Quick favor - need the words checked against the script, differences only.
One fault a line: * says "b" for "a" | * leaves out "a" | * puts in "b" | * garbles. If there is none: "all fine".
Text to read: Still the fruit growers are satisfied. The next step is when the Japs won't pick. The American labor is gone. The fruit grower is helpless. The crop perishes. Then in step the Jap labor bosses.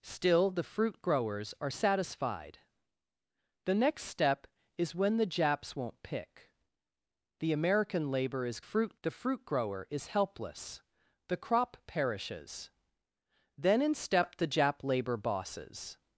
* says "fruit" for "gone"